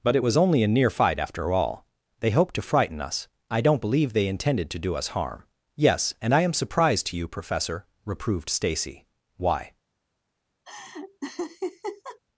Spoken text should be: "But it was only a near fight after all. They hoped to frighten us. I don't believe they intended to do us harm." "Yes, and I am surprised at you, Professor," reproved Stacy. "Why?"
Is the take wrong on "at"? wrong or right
wrong